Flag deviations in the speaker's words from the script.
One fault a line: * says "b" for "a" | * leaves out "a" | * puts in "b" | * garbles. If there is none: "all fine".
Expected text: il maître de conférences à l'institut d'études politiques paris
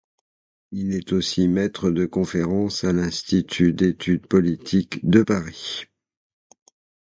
* puts in "est aussi"
* puts in "de"